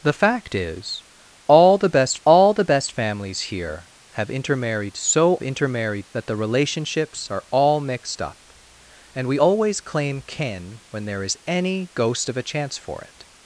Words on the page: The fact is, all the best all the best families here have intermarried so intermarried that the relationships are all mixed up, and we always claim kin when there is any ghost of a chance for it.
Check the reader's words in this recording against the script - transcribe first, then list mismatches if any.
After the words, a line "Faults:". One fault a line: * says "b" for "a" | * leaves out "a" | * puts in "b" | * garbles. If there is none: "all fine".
The fact is, all the best all the best families here have intermarried so intermarried that the relationships are all mixed up, and we always claim kin when there is any ghost of a chance for it.
Faults:
all fine